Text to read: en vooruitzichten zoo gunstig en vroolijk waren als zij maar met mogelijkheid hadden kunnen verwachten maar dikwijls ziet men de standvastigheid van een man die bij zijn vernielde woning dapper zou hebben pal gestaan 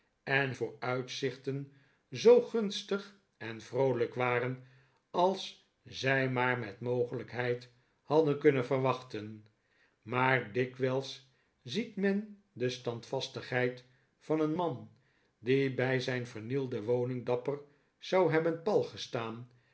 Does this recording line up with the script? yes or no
yes